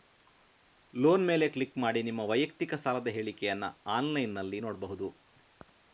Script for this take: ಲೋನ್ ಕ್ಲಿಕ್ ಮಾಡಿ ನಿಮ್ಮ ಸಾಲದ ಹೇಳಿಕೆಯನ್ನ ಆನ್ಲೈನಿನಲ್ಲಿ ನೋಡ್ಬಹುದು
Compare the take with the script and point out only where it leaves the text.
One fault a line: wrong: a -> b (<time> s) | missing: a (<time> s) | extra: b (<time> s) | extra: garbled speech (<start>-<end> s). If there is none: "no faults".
extra: ಮೇಲೆ (1.3 s)
extra: ವೈಯಕ್ತಿಕ (2.2 s)